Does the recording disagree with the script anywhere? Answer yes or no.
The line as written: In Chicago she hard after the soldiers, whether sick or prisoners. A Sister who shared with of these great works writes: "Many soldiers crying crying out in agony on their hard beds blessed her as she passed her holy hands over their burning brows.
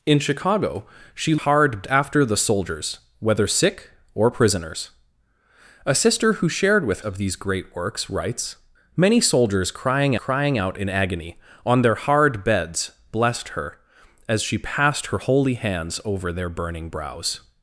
no